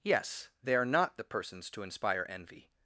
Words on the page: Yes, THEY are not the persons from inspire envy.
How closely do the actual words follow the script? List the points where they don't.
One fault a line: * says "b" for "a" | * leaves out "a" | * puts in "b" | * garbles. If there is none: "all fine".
* says "to" for "from"